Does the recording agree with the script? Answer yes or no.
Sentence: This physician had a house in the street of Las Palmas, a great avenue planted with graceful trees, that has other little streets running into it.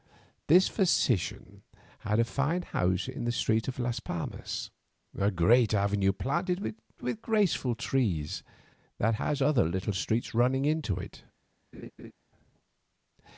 no